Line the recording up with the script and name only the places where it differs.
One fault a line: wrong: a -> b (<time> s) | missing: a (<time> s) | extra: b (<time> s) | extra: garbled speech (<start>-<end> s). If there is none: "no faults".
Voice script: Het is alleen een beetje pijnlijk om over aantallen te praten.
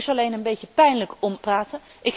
missing: over aantallen te (1.4 s)